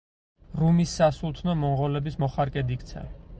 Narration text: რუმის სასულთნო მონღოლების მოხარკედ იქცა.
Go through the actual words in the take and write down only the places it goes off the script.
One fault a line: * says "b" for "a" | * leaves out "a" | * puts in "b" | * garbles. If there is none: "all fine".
all fine